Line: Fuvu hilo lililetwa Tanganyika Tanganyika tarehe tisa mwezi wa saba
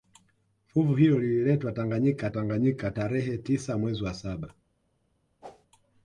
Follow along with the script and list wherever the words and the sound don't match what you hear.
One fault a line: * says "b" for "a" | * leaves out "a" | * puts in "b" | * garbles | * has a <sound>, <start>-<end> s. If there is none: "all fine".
* has a whoosh, 5.4-5.7 s